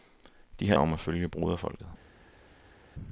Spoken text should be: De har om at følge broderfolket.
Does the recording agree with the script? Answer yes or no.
yes